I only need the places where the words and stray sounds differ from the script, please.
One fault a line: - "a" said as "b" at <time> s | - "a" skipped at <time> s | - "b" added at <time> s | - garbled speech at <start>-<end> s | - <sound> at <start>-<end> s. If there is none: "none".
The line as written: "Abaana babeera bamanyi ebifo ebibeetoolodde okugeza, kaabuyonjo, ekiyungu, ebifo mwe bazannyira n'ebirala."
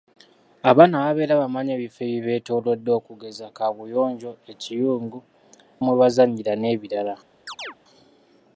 - "ebifo" skipped at 5.2 s
- chirp at 7.5-7.8 s